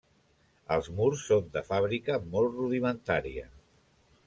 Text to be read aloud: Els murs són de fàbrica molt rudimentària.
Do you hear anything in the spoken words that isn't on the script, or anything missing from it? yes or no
no